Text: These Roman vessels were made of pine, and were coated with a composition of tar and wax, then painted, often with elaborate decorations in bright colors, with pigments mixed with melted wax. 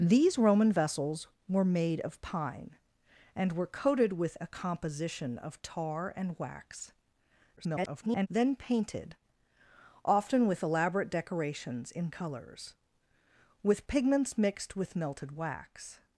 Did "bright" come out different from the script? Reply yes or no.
yes